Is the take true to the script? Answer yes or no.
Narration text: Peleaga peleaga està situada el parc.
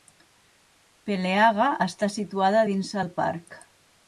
no